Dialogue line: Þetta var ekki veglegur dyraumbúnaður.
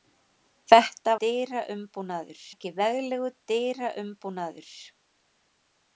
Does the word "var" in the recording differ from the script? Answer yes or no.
yes